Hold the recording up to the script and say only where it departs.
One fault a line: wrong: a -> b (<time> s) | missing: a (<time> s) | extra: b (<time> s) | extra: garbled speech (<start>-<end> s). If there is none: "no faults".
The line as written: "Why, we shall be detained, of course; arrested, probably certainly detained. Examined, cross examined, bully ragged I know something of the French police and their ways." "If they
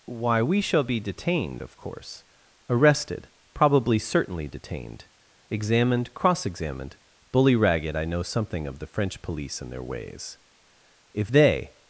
no faults